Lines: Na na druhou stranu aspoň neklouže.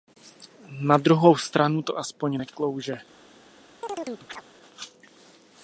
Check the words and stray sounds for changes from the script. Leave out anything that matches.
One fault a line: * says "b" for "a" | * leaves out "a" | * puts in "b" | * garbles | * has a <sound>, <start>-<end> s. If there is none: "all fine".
* leaves out "na"
* puts in "to"
* has a chirp, 3.8-4.4 s